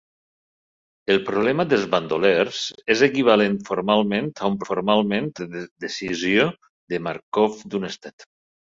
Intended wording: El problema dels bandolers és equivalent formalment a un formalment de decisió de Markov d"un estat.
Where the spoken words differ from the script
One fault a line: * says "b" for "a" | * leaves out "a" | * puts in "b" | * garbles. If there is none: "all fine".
all fine